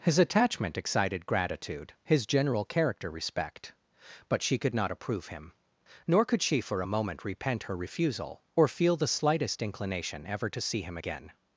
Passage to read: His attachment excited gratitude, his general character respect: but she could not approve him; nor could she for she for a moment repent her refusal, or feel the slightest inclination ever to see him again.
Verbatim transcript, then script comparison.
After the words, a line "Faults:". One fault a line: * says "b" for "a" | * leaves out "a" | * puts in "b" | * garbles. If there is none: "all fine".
His attachment excited gratitude, his general character respect: but she could not approve him; nor could she for a moment repent her refusal, or feel the slightest inclination ever to see him again.
Faults:
* leaves out "she for"